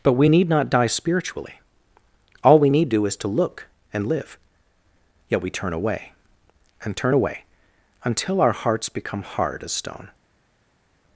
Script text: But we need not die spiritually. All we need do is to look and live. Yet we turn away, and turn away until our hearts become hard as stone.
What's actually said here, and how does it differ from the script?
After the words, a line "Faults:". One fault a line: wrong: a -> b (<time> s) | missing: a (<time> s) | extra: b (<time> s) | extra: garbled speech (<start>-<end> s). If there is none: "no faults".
But we need not die spiritually. All we need do is to look and live. Yet we turn away, and turn away until our hearts become hard as stone.
Faults:
no faults